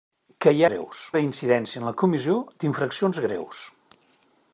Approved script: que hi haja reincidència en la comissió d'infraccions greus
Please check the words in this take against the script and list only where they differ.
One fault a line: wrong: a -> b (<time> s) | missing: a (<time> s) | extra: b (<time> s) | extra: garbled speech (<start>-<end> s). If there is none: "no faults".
wrong: haja -> greus (0.7 s)